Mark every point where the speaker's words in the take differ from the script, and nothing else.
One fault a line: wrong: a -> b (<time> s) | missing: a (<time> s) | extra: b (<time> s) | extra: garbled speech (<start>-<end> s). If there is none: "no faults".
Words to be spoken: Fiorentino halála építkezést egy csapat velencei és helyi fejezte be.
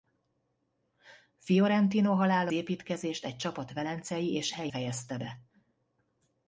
no faults